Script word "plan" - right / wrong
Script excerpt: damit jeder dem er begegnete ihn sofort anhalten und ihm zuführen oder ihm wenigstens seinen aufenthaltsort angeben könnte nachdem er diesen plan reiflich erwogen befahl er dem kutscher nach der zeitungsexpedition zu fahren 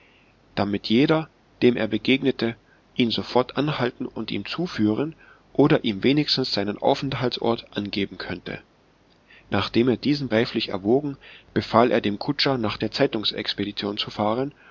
wrong